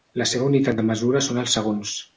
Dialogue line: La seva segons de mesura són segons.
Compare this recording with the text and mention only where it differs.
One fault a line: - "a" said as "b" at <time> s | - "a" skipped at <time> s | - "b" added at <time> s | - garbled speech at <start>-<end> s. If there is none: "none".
- "segons" said as "unitat" at 0.5 s
- "els" added at 1.4 s